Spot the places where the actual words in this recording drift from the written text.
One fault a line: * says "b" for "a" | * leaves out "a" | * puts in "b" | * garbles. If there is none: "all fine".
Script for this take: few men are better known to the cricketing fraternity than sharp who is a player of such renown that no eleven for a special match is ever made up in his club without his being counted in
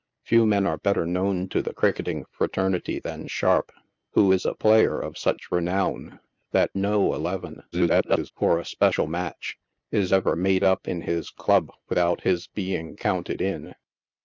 * garbles